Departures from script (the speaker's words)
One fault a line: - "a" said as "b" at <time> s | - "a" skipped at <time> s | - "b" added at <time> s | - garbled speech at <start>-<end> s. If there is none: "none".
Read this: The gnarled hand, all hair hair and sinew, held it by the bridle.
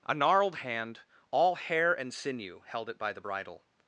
- "The" said as "A" at 0.0 s
- "hair" skipped at 1.9 s